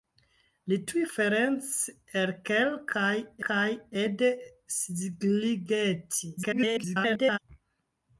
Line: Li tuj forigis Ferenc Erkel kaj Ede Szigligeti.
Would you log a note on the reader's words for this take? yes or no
yes